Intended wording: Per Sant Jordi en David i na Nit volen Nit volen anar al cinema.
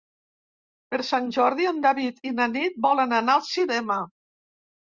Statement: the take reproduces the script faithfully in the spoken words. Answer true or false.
false